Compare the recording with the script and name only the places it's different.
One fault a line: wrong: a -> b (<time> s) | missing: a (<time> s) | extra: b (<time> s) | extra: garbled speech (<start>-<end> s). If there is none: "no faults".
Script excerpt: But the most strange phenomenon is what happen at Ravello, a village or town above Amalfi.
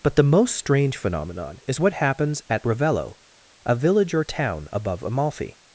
wrong: happen -> happens (1.9 s)